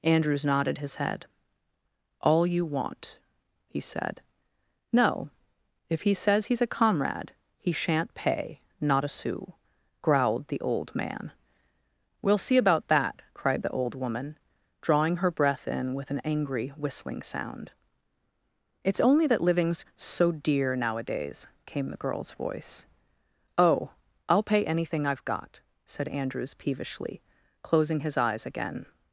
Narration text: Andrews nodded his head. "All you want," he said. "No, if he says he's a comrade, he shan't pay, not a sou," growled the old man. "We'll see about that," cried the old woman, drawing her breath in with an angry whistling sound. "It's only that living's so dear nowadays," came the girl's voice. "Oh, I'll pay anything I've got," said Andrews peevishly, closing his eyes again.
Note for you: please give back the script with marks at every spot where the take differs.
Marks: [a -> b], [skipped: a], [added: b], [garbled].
Andrews nodded his head. "All you want," he said. "No, if he says he's a comrade, he shan't pay, not a sou," growled the old man. "We'll see about that," cried the old woman, drawing her breath in with an angry whistling sound. "It's only that living's so dear nowadays," came the girl's voice. "Oh, I'll pay anything I've got," said Andrews peevishly, closing his eyes again.